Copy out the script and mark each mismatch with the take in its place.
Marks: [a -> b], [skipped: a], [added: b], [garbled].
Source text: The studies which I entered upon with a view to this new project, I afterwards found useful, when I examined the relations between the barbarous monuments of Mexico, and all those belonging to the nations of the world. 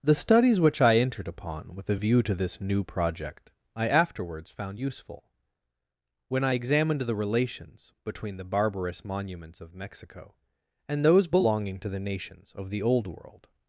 The studies which I entered upon with a view to this new project, I afterwards found useful, when I examined the relations between the barbarous monuments of Mexico, and [skipped: all] those belonging to the nations of the [added: old] world.